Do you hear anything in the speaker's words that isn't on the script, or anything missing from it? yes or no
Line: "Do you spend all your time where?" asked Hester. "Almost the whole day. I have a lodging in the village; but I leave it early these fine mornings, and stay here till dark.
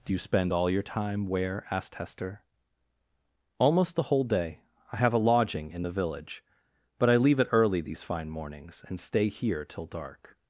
no